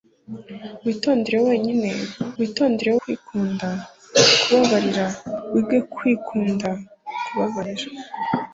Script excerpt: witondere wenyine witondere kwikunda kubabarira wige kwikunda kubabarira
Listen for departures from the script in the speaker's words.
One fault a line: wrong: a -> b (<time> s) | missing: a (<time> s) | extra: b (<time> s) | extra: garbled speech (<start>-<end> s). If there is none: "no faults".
no faults